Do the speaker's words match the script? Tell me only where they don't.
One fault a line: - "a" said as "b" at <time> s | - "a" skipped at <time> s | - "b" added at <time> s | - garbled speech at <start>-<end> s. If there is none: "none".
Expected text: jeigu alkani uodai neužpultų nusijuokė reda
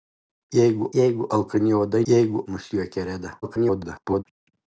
- "jeigu" added at 1.0 s
- "neužpultų" said as "jeigu" at 2.1 s
- garbled speech at 3.4-4.2 s